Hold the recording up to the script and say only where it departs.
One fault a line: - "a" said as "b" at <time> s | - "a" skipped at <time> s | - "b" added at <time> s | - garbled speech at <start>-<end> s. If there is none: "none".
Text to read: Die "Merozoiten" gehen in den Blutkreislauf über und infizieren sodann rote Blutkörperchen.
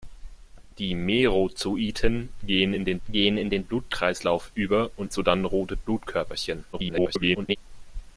- "gehen in den" added at 3.1 s
- "infizieren" skipped at 5.1 s
- garbled speech at 6.7-7.6 s